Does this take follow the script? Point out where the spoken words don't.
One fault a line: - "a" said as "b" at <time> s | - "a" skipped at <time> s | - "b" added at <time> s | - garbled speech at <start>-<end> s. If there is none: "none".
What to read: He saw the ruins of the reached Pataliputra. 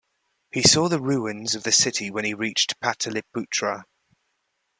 - "city when he" added at 1.7 s